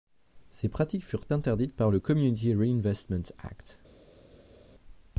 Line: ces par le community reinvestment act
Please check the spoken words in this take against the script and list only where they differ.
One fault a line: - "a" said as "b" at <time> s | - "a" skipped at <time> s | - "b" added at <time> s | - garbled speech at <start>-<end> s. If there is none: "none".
- "pratiques furent interdites" added at 0.7 s